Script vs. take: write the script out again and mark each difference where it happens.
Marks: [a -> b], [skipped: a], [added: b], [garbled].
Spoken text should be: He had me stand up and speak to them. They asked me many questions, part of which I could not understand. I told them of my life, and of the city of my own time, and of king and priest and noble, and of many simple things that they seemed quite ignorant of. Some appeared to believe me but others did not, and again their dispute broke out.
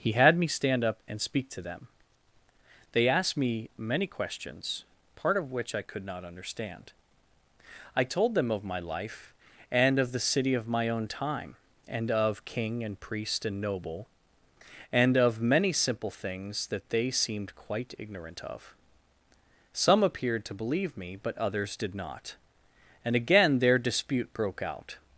He had me stand up and speak to them. They asked me many questions, part of which I could not understand. I told them of my life, and of the city of my own time, and of king and priest and noble, and of many simple things that they seemed quite ignorant of. Some appeared to believe me but others did not, and again their dispute broke out.